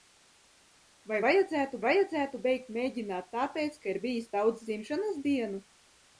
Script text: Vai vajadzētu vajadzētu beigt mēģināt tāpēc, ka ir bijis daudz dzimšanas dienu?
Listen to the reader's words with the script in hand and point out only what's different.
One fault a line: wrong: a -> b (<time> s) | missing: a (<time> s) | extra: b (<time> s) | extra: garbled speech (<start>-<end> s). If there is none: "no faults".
no faults